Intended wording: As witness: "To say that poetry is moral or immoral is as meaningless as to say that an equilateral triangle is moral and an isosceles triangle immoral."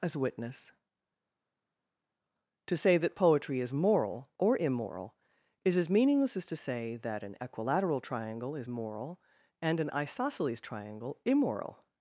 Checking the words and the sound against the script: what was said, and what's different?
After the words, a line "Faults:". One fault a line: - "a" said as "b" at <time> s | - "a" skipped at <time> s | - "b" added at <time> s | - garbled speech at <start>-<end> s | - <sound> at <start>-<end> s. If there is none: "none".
As witness: "To say that poetry is moral or immoral is as meaningless as to say that an equilateral triangle is moral and an isosceles triangle immoral."
Faults:
none